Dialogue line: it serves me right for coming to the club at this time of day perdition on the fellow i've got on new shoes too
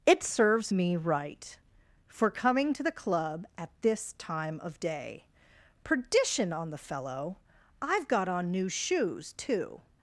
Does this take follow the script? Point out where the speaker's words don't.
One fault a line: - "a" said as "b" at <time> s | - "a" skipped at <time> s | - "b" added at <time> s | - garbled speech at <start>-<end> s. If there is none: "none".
none